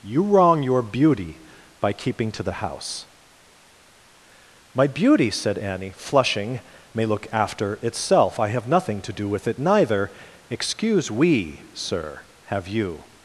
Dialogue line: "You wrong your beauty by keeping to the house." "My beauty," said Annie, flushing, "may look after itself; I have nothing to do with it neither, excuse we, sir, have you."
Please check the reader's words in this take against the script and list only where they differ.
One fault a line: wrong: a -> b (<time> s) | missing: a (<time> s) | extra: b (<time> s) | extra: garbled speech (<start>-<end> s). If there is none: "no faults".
no faults